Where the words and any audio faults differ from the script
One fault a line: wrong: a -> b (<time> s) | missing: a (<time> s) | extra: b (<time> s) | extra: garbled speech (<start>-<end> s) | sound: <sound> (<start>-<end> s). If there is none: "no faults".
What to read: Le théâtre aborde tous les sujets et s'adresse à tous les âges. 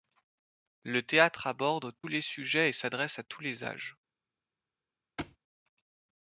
missing: tous (1.9 s)
sound: thud (5.2-5.4 s)